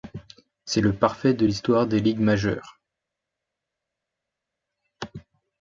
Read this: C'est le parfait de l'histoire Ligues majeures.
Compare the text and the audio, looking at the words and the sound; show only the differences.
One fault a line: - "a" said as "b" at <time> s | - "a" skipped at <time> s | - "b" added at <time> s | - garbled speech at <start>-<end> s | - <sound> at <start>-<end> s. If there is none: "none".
- "des" added at 1.8 s